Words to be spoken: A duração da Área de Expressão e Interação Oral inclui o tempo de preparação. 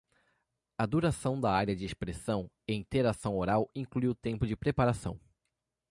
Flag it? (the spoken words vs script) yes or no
no